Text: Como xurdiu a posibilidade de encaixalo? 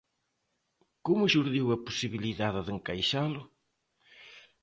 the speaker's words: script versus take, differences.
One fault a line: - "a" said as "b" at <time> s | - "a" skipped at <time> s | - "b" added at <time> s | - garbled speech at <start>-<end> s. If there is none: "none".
none